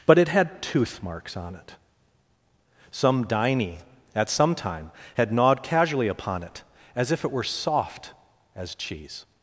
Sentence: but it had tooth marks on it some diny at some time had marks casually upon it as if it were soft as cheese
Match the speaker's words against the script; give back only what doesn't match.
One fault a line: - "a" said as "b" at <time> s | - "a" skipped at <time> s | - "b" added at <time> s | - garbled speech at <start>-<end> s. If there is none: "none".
- "marks" said as "gnawed" at 5.3 s